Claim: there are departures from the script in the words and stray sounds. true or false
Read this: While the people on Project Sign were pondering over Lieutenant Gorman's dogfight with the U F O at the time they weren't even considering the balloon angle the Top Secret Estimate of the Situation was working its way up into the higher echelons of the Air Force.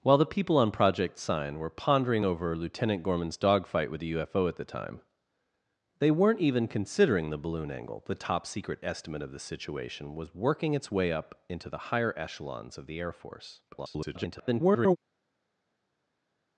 true